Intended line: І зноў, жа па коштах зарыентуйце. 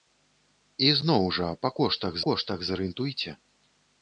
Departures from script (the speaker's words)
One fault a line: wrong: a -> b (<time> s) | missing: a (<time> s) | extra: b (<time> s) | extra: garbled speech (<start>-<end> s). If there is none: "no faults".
extra: коштах (2.3 s)